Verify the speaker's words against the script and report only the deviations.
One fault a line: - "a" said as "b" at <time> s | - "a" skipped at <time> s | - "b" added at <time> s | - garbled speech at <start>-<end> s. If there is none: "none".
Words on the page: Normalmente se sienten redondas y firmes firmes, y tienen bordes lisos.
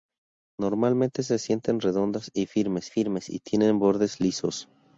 none